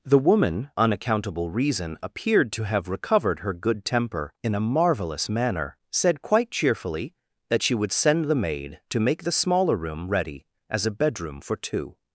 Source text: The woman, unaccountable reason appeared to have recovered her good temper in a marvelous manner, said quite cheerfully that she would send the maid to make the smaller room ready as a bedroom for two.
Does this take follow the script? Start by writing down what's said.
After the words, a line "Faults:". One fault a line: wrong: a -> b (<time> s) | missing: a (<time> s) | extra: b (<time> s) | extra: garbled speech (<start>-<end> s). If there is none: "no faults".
The woman, unaccountable reason appeared to have recovered her good temper in a marvelous manner, said quite cheerfully that she would send the maid to make the smaller room ready as a bedroom for two.
Faults:
no faults